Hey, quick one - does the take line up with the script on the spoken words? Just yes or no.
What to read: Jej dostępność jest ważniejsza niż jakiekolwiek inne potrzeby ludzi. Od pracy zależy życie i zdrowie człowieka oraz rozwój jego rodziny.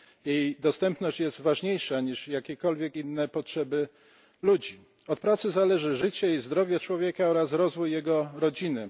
yes